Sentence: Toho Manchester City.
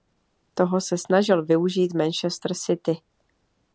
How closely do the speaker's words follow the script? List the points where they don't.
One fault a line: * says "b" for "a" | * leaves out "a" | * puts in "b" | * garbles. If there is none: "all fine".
* puts in "se snažil využít"